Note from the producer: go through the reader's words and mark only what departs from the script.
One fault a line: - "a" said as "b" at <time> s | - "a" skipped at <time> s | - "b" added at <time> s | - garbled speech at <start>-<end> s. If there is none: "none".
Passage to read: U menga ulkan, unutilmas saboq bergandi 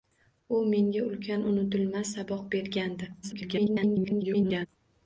- garbled speech at 3.2-4.7 s